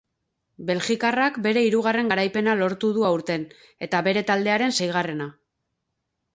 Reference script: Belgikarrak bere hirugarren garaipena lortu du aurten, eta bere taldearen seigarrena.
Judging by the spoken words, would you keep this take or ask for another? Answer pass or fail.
pass